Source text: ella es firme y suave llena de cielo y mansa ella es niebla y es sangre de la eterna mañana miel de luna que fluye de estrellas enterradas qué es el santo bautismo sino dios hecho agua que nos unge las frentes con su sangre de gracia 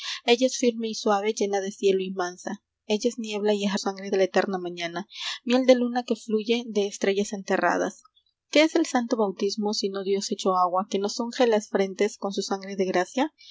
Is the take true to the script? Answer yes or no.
yes